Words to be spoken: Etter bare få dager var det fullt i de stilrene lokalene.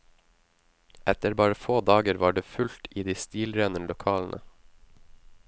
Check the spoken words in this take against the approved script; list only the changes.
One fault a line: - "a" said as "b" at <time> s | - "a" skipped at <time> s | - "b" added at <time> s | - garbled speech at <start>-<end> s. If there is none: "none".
none